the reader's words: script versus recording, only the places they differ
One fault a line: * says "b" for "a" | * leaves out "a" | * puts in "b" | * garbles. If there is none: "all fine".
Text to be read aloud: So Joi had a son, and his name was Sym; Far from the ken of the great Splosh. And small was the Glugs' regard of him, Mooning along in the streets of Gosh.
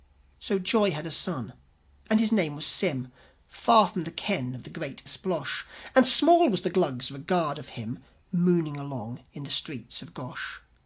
all fine